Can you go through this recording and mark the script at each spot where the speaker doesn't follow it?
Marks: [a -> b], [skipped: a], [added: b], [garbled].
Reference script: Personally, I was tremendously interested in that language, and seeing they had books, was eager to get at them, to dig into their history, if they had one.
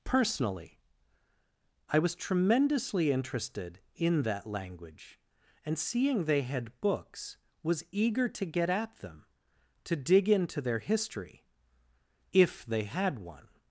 Personally, I was tremendously interested in that language, and seeing they had books, was eager to get at them, to dig into their history, if they had one.